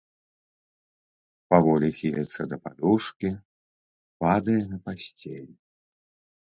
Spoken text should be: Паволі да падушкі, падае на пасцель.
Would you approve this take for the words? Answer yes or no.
no